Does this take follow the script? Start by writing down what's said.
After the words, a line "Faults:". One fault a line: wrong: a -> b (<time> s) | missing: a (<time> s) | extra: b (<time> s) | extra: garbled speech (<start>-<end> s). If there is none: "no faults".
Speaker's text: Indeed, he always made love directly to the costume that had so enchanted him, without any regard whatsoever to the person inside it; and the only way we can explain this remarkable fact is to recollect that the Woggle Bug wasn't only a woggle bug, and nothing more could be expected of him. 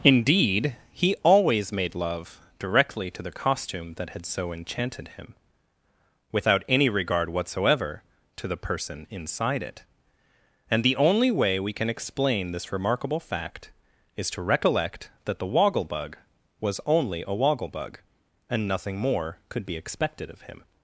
Indeed, he always made love directly to the costume that had so enchanted him, without any regard whatsoever to the person inside it; and the only way we can explain this remarkable fact is to recollect that the Woggle Bug was only a woggle bug, and nothing more could be expected of him.
Faults:
wrong: wasn't -> was (16.6 s)